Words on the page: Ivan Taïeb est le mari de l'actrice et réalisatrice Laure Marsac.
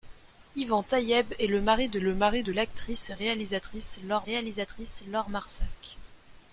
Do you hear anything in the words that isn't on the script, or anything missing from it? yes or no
yes